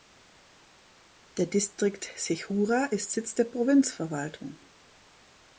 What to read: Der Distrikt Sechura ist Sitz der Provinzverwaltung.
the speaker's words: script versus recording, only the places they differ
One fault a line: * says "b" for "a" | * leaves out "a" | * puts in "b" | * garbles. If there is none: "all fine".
all fine